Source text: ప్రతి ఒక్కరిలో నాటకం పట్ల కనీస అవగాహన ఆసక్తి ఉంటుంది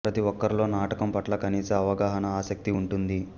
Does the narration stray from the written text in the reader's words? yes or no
no